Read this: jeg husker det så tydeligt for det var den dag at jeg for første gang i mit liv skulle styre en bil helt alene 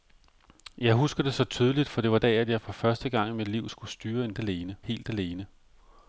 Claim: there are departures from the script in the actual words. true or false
true